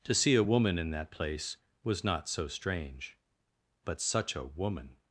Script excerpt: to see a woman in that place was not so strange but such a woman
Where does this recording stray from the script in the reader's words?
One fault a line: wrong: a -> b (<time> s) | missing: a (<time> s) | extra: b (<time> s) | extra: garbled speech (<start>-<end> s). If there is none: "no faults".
no faults